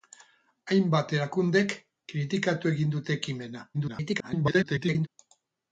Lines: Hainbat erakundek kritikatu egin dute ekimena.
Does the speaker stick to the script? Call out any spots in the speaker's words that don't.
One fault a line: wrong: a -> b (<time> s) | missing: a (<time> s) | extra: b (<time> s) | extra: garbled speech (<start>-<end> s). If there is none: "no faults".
extra: garbled speech (3.7-5.1 s)